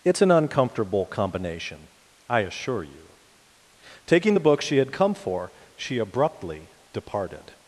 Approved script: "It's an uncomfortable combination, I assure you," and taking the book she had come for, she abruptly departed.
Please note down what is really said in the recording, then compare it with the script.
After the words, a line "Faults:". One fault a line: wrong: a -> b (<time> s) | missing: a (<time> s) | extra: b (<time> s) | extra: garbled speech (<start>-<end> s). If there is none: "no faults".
"It's an uncomfortable combination, I assure you," taking the book she had come for, she abruptly departed.
Faults:
missing: and (3.1 s)